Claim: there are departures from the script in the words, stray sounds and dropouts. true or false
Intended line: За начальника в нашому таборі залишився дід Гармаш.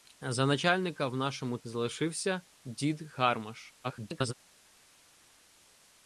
true